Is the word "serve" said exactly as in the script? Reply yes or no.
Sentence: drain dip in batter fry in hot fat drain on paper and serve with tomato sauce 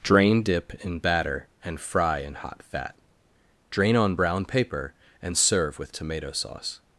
yes